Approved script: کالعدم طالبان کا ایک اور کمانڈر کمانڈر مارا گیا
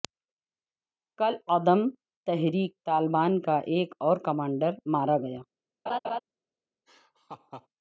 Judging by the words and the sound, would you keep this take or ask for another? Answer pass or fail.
fail